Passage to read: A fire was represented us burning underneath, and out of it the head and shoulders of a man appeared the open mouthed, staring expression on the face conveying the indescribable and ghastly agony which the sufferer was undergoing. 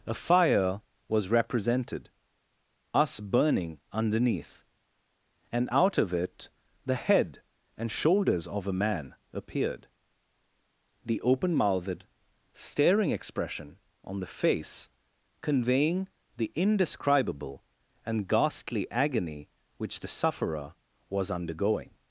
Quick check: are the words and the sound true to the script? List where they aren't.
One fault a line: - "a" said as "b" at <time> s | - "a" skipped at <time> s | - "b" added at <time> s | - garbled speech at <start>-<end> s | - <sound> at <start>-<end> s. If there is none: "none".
none